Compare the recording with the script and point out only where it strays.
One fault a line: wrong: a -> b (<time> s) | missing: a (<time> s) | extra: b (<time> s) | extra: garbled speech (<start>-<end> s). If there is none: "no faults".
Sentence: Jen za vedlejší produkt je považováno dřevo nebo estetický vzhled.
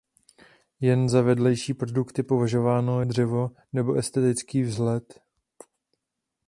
no faults